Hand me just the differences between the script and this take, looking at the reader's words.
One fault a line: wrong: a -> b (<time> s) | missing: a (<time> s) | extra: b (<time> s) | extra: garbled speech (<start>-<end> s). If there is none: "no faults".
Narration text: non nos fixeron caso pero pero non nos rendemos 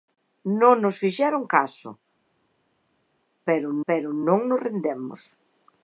no faults